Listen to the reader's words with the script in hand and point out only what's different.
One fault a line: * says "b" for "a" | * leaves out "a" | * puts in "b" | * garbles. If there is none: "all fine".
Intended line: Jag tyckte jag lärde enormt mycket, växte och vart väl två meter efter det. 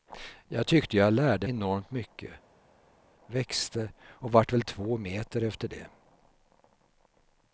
all fine